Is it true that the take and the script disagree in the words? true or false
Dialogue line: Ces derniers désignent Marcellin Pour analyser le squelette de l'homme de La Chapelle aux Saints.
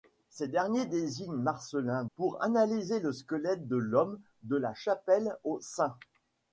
false